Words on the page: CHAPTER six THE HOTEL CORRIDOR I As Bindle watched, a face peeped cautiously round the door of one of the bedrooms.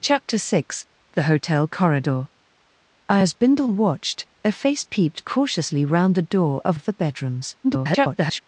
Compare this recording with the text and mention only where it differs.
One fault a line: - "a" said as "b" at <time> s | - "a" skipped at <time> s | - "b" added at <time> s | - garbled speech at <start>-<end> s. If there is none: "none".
- "one" skipped at 6.8 s
- garbled speech at 7.6-8.4 s